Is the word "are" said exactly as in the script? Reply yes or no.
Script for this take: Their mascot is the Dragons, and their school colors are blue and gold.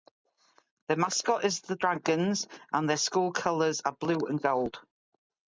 yes